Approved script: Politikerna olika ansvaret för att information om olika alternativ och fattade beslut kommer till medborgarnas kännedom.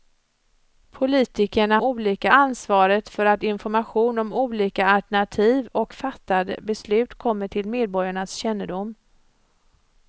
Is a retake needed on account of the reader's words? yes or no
no